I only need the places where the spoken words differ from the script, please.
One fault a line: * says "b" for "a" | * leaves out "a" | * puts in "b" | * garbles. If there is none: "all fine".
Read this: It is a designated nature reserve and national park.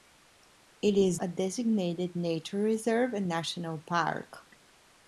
all fine